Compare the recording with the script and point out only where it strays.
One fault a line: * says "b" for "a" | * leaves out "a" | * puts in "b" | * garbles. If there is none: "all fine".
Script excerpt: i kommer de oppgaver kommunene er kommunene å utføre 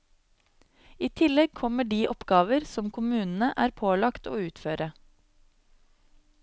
* puts in "tillegg"
* puts in "som"
* says "pålagt" for "kommunene"